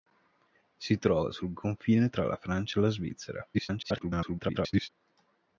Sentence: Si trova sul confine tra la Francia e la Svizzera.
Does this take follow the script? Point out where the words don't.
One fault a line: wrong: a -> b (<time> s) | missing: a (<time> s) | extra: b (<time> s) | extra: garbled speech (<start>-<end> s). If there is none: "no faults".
extra: garbled speech (3.5-4.9 s)